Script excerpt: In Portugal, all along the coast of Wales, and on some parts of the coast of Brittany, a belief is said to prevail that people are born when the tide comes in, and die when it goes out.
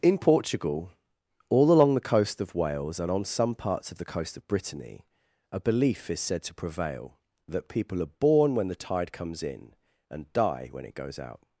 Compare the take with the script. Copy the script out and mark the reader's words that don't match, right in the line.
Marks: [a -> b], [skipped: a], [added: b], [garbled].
In Portugal, all along the coast of Wales, and on some parts of the coast of Brittany, a belief is said to prevail that people are born when the tide comes in, and die when it goes out.